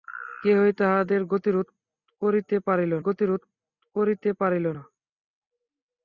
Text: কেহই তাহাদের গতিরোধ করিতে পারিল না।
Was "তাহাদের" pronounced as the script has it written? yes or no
yes